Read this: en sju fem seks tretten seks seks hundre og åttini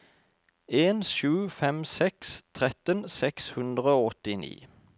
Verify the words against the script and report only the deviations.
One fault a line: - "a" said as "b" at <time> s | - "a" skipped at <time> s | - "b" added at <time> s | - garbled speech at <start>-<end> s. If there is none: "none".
- "seks" skipped at 3.5 s